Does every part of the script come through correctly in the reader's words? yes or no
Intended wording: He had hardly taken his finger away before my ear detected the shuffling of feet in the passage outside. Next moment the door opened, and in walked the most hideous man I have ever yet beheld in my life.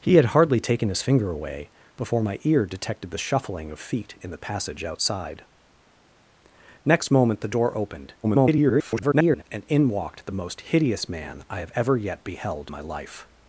no